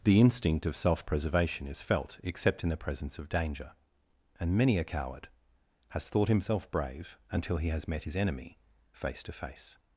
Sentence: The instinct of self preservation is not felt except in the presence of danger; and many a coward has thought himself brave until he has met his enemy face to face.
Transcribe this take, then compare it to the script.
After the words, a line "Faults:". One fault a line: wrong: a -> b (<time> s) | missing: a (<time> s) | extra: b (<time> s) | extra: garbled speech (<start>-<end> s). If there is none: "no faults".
The instinct of self preservation is felt except in the presence of danger; and many a coward has thought himself brave until he has met his enemy face to face.
Faults:
missing: not (1.8 s)